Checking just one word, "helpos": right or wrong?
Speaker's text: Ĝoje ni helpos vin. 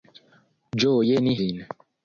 wrong